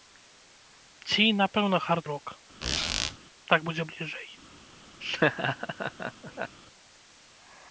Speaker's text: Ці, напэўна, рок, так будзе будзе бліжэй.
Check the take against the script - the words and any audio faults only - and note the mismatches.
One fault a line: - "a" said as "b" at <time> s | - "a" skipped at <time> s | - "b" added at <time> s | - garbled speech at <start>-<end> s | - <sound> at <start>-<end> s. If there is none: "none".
- "хард" added at 1.9 s
- squeak at 2.6-3.2 s
- "будзе" skipped at 3.8 s
- laugh at 5.0-6.6 s